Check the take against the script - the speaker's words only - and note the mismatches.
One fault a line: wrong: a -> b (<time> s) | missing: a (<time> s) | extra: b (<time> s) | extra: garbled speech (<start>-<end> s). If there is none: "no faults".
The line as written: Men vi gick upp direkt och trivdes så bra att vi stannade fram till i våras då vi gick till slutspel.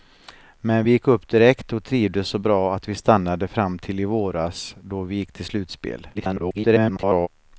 extra: garbled speech (6.1-7.3 s)